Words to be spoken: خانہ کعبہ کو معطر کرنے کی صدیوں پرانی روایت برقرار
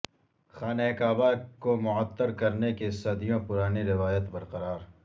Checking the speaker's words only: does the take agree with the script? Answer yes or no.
yes